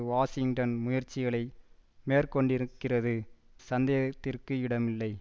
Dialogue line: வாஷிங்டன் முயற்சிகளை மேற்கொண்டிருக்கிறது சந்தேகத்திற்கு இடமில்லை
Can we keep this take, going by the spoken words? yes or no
yes